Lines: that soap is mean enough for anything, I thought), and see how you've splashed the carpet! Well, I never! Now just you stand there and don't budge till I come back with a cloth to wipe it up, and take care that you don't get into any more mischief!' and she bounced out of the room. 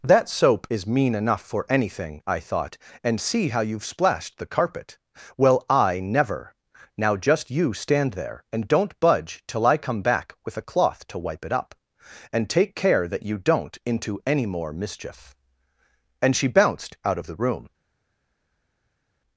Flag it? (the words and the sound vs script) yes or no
yes